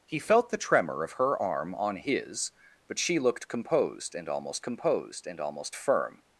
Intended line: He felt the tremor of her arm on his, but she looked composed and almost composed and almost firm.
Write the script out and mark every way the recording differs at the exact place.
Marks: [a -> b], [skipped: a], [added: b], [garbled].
He felt the tremor of her arm on his, but she looked composed and almost composed and almost firm.